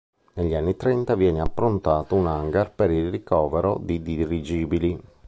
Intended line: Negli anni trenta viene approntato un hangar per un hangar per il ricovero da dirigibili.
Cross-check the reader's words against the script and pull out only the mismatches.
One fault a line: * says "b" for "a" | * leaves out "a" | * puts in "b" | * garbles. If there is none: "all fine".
* leaves out "un hangar per"
* says "di" for "da"